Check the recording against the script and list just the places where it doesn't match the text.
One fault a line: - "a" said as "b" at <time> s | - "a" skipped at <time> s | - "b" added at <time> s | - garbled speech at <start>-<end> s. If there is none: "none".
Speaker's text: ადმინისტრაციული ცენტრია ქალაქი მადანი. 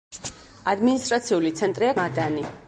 - "ქალაქი" skipped at 1.9 s